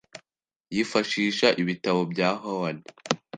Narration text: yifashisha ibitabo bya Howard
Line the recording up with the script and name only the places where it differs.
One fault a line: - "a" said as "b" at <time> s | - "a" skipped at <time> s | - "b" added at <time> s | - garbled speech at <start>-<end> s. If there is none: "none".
none